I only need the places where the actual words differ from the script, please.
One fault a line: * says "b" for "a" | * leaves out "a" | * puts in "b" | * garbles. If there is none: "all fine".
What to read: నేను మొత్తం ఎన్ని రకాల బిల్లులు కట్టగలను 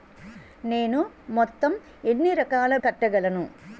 * leaves out "బిల్లులు"